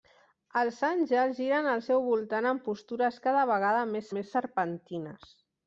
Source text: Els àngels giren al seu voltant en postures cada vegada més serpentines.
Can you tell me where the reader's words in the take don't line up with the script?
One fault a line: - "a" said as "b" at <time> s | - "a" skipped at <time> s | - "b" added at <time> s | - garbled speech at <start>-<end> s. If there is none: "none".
- "més" added at 4.2 s